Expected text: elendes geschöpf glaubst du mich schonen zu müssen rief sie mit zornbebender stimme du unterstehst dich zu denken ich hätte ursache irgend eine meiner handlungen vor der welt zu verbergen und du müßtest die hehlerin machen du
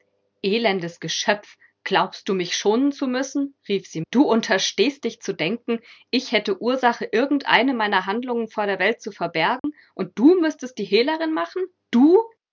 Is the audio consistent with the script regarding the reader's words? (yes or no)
no